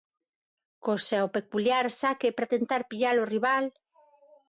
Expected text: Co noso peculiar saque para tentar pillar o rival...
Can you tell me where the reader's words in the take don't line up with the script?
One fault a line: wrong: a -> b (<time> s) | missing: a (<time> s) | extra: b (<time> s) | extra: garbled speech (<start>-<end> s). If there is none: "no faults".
wrong: noso -> seu (1.1 s)